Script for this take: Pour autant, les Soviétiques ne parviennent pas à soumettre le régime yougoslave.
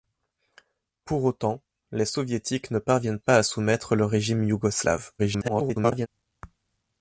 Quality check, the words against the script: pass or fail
fail